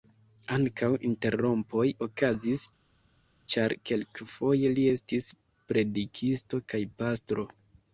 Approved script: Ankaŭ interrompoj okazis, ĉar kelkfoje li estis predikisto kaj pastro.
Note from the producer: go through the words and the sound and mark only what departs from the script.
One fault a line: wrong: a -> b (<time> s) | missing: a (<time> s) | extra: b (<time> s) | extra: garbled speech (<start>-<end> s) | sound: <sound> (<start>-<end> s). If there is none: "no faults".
no faults